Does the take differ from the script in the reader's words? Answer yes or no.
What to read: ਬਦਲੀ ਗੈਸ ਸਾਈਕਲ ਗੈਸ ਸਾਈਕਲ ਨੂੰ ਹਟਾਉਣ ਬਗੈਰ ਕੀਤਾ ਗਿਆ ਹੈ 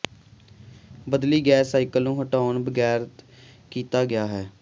yes